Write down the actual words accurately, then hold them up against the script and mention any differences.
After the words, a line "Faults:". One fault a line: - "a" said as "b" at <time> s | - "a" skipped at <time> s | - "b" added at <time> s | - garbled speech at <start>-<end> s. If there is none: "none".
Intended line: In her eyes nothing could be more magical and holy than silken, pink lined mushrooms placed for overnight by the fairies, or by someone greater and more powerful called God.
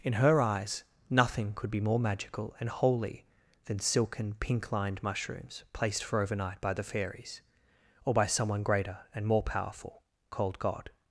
In her eyes nothing could be more magical and holy than silken, pink lined mushrooms placed for overnight by the fairies, or by someone greater and more powerful called God.
Faults:
none